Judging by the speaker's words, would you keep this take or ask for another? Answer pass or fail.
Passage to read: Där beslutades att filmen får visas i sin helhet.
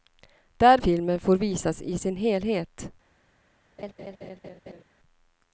fail